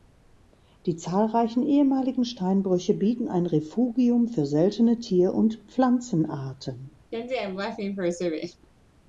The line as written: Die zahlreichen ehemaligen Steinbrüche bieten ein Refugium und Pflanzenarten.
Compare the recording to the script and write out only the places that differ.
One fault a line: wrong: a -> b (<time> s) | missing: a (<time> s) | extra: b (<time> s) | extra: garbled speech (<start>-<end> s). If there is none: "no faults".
extra: für seltene Tier (4.3 s)